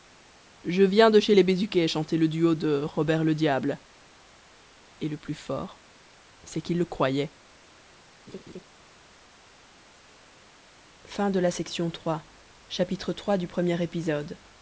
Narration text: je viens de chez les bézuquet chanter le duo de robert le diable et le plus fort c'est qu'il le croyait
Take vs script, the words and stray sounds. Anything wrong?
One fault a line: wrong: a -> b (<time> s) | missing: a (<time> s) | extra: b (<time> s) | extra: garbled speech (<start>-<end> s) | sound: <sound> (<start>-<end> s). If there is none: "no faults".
sound: laugh (8.3-8.6 s)